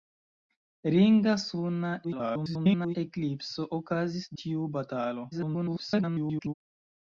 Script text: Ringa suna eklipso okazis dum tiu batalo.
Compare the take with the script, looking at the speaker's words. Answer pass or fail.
fail